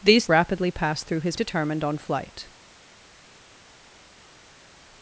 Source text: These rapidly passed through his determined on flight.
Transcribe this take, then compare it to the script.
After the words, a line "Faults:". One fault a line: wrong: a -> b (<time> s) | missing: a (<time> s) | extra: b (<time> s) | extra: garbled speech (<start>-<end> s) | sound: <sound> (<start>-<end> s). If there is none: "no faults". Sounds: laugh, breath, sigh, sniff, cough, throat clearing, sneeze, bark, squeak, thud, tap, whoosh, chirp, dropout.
These rapidly passed through his determined on flight.
Faults:
no faults